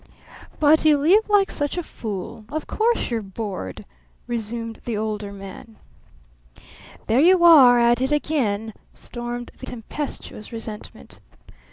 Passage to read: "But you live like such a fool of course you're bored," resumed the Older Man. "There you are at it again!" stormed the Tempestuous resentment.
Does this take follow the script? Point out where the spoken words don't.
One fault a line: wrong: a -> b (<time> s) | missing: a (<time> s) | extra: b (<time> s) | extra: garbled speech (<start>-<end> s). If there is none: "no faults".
no faults